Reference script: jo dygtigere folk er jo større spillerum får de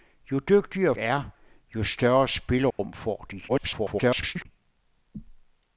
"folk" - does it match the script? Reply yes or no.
no